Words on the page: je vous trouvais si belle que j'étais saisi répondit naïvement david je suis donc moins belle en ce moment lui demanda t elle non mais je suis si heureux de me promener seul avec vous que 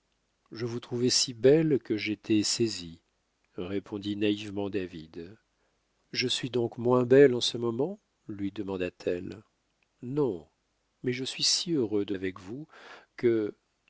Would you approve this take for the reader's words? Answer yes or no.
no